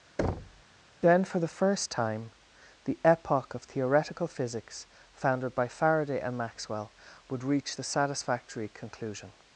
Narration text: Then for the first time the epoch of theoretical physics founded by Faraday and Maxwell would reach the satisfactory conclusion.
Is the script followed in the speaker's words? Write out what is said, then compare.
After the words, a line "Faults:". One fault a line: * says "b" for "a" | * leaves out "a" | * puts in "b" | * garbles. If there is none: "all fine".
Then for the first time the epoch of theoretical physics founded by Faraday and Maxwell would reach the satisfactory conclusion.
Faults:
all fine